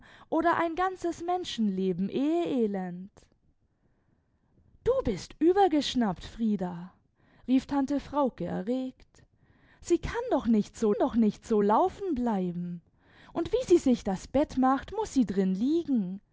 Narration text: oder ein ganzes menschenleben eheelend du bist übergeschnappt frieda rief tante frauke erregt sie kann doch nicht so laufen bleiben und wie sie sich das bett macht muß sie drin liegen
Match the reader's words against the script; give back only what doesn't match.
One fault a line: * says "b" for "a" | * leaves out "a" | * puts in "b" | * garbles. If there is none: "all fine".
* puts in "doch nicht so"